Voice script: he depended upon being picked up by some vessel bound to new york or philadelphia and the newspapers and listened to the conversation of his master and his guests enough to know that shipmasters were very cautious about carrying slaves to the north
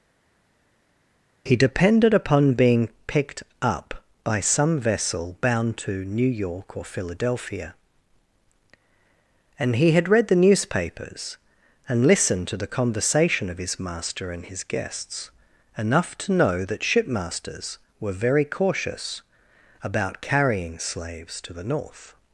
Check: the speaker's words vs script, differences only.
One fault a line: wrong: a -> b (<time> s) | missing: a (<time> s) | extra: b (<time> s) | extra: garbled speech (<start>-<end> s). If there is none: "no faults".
extra: he had read (9.8 s)